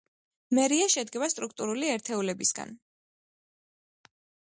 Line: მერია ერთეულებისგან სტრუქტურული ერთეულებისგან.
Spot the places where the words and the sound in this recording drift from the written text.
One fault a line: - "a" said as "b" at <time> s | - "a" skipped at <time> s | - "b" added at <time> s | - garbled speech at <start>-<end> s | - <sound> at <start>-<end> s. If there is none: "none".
- "ერთეულებისგან" said as "შედგება" at 0.9 s